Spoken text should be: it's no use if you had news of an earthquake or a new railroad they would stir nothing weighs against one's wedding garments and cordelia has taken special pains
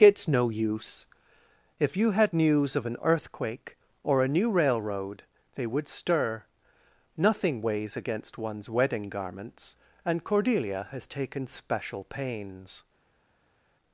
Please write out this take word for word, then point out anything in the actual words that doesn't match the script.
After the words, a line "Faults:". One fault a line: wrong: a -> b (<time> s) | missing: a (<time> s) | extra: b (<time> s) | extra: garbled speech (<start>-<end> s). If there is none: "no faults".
it's no use if you had news of an earthquake or a new railroad they would stir nothing weighs against one's wedding garments and cordelia has taken special pains
Faults:
no faults